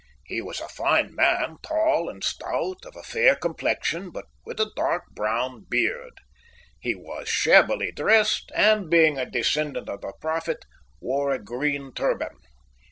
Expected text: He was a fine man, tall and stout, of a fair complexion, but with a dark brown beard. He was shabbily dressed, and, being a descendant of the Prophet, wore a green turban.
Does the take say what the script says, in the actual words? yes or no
yes